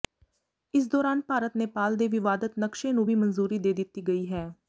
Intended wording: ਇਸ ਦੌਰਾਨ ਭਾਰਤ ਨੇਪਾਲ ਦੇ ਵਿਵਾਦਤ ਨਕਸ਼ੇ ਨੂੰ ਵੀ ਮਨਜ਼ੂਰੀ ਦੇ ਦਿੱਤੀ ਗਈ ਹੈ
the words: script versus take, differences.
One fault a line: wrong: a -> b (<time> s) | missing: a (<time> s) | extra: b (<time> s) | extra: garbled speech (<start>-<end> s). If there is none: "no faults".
no faults